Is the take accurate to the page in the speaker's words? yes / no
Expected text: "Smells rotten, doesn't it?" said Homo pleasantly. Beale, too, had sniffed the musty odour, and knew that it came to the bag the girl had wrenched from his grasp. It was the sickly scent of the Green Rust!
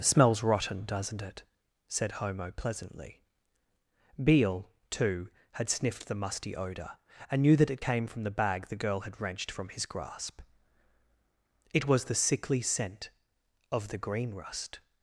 no